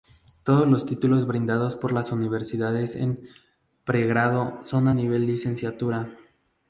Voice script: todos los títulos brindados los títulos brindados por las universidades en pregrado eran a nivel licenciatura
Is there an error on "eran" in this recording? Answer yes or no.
yes